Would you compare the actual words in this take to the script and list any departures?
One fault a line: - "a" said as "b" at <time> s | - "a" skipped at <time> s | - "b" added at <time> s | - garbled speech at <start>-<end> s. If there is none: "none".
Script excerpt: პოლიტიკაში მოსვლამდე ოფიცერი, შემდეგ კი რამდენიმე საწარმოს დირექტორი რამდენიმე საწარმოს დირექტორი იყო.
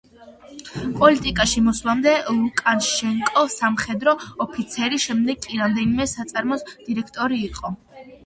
- "ლუკაშენკო სამხედრო" added at 2.4 s
- "რამდენიმე საწარმოს დირექტორი" skipped at 7.4 s